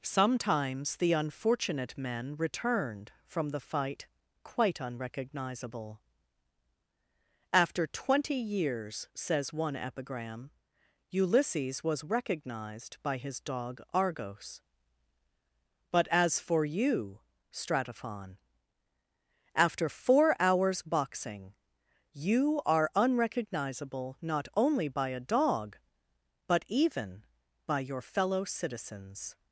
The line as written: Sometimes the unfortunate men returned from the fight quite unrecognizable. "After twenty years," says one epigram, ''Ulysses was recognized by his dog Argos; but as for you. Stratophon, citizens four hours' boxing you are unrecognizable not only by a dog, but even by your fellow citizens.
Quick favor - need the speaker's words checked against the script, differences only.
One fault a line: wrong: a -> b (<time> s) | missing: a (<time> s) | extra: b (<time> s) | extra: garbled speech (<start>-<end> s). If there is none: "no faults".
wrong: citizens -> after (19.6 s)